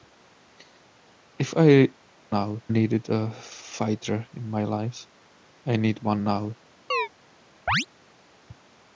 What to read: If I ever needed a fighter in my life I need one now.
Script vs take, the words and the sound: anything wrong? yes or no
yes